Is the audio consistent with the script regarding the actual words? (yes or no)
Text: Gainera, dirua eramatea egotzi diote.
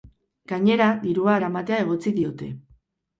yes